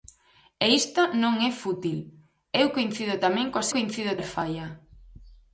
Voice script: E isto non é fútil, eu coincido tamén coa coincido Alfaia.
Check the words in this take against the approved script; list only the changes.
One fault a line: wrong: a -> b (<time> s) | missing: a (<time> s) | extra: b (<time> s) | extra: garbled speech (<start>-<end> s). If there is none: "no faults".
no faults